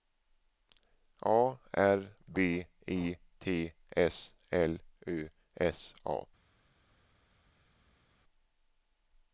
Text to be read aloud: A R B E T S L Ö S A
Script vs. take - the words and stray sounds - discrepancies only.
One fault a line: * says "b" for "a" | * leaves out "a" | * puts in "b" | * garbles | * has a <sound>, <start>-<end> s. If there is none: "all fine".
all fine